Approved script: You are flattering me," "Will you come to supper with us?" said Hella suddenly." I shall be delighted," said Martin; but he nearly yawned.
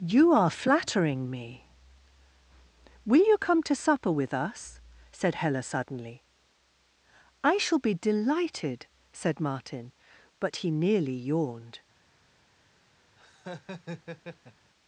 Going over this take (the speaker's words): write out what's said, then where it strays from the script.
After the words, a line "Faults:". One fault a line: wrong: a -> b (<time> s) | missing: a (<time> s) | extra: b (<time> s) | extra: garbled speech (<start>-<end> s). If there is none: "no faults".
You are flattering me," "Will you come to supper with us?" said Hella suddenly." I shall be delighted," said Martin; but he nearly yawned.
Faults:
no faults